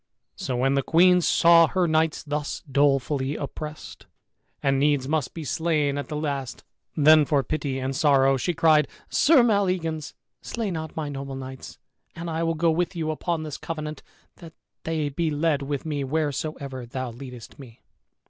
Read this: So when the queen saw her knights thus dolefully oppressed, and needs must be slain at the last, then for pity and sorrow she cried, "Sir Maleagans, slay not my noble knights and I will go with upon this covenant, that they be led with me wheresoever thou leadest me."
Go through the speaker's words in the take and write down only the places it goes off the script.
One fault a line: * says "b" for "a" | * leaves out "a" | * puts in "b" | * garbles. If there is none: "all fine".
* puts in "you"